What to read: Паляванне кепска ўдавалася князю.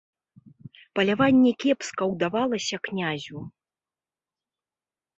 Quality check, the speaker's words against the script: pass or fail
pass